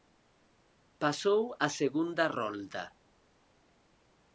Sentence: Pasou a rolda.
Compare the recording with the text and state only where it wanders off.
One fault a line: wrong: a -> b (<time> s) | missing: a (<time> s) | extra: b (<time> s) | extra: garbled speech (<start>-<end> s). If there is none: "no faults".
extra: segunda (1.8 s)